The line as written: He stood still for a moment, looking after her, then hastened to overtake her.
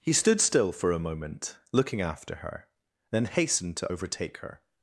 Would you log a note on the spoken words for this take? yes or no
no